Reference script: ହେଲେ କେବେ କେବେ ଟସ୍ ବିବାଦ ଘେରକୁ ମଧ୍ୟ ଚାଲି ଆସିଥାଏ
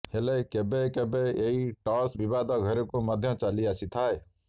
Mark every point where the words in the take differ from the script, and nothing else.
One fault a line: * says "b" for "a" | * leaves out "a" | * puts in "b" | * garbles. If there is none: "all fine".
* puts in "ଏହି"